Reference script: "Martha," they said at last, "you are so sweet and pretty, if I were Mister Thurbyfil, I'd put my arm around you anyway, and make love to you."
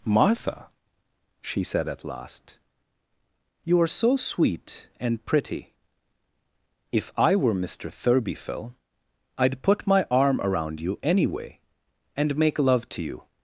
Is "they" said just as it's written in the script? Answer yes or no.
no